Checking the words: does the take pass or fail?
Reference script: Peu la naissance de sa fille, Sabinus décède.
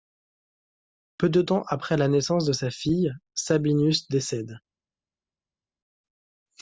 fail